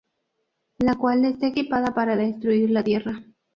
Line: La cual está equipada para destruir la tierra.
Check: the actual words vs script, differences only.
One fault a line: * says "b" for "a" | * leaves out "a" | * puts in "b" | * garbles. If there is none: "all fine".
all fine